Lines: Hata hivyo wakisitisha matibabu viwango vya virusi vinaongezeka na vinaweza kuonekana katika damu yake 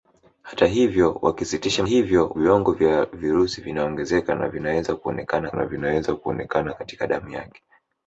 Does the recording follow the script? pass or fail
fail